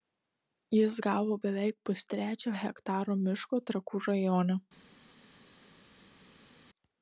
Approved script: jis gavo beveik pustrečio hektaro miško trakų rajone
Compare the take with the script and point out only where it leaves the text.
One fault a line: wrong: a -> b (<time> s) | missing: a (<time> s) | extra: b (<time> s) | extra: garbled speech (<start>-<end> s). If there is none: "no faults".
no faults